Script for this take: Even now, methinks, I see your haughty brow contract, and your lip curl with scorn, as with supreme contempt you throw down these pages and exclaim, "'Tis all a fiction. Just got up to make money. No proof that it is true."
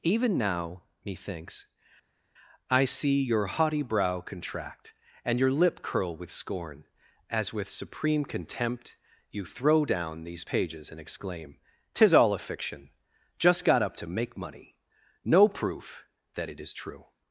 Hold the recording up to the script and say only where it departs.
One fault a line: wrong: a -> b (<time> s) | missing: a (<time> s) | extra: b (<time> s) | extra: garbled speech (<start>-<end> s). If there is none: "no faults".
no faults